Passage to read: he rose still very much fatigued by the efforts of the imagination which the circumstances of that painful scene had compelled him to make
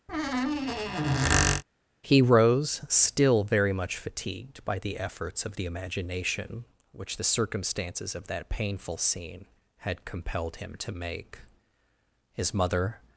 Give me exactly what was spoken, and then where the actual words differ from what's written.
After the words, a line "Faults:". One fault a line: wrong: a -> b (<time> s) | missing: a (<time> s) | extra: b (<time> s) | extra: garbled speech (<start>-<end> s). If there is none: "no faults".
he rose still very much fatigued by the efforts of the imagination which the circumstances of that painful scene had compelled him to make his mother
Faults:
extra: his mother (12.3 s)